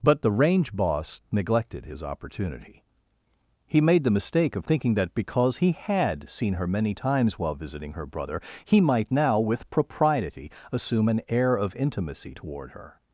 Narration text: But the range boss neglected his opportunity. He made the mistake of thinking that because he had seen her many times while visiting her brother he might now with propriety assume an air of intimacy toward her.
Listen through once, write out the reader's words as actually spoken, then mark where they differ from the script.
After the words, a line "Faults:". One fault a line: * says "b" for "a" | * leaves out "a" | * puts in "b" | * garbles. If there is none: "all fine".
But the range boss neglected his opportunity. He made the mistake of thinking that because he had seen her many times while visiting her brother he might now with propriety assume an air of intimacy toward her.
Faults:
all fine